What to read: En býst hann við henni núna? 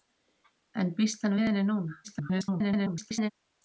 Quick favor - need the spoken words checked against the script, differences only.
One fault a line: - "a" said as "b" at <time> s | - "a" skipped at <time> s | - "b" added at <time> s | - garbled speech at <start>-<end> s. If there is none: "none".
- garbled speech at 2.0-3.3 s